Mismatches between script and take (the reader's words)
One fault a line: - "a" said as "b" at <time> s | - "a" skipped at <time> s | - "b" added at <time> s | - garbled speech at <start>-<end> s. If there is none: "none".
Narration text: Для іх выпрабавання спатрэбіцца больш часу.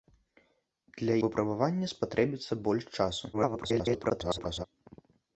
- "іх" skipped at 1.2 s
- garbled speech at 3.3-4.7 s